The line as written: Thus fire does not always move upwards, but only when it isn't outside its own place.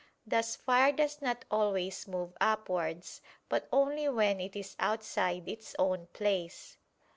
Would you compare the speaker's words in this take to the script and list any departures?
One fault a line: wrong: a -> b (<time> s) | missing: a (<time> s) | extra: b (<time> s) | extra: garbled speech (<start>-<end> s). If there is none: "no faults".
wrong: isn't -> is (4.5 s)